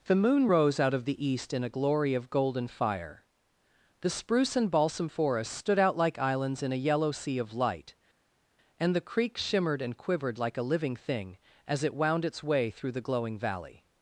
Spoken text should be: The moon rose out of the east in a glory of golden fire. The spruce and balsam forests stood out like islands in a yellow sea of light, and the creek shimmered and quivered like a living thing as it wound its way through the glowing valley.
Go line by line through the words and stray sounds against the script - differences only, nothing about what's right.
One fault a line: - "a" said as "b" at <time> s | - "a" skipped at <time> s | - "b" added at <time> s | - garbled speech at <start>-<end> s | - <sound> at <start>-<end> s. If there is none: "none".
none